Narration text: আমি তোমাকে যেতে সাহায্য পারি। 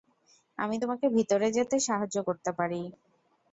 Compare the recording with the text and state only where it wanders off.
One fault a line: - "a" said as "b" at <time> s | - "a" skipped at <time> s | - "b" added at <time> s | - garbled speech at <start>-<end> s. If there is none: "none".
- "ভিতরে" added at 1.2 s
- "করতে" added at 2.3 s